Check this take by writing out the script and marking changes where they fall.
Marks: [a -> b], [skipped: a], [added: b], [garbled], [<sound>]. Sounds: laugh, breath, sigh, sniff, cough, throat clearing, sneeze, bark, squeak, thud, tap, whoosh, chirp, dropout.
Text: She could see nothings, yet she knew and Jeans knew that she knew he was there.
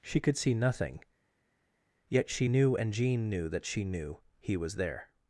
She could see [nothings, -> nothing] yet she knew and [Jeans -> Jean] knew that she knew he was there.